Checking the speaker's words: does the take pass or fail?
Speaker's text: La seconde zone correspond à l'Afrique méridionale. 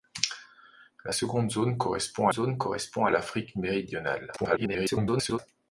fail